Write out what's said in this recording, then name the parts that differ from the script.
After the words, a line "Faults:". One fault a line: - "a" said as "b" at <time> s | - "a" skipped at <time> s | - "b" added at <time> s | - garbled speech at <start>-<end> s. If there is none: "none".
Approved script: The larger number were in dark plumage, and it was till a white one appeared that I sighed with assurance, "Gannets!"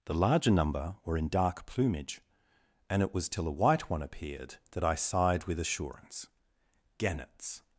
The larger number were in dark plumage, and it was till a white one appeared that I sighed with assurance, "Gannets!"
Faults:
none